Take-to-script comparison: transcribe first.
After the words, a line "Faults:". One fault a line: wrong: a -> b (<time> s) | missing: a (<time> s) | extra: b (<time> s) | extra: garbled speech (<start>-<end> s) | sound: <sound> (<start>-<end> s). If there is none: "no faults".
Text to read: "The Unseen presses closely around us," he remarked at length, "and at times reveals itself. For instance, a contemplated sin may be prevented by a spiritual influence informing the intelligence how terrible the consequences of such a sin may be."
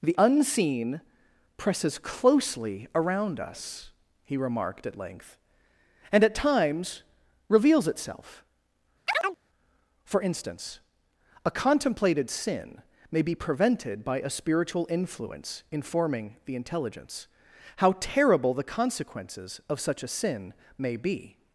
"The Unseen presses closely around us," he remarked at length, "and at times reveals itself. For instance, a contemplated sin may be prevented by a spiritual influence informing the intelligence how terrible the consequences of such a sin may be."
Faults:
sound: chirp (9.1-9.4 s)